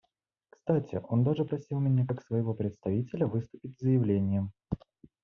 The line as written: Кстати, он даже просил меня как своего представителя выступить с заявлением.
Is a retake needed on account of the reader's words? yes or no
no